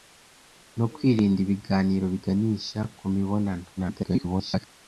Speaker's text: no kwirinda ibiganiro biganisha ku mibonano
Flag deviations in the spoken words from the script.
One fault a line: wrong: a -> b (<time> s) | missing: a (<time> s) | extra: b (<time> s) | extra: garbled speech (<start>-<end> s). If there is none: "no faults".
extra: garbled speech (3.8-4.7 s)